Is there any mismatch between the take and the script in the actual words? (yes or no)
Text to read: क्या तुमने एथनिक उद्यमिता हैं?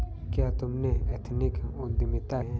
no